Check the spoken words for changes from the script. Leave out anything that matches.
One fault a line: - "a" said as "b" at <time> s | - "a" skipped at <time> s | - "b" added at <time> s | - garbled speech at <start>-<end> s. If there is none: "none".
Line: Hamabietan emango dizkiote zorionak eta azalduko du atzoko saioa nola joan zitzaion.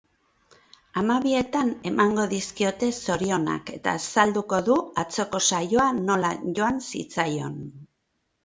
none